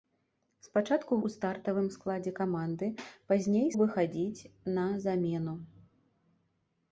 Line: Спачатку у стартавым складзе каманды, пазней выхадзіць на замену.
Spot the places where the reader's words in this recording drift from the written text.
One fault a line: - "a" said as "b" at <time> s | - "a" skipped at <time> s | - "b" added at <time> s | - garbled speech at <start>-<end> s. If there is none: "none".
none